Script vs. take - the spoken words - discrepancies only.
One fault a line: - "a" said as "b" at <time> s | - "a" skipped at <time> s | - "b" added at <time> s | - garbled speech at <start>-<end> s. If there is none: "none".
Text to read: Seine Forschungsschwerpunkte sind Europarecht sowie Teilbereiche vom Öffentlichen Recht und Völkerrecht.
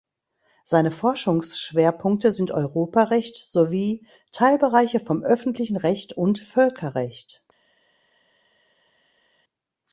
none